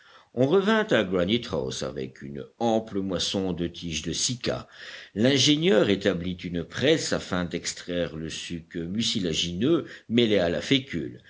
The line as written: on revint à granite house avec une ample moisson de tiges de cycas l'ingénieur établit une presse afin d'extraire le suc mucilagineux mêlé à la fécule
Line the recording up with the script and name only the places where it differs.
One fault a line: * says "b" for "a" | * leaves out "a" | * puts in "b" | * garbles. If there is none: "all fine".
all fine